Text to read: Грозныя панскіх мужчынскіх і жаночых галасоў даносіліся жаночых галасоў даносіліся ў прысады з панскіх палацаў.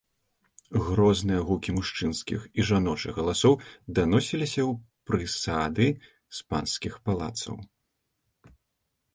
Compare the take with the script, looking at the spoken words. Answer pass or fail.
fail